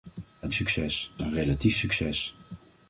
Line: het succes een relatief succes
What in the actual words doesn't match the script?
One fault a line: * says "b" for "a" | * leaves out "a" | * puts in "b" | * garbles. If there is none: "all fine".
all fine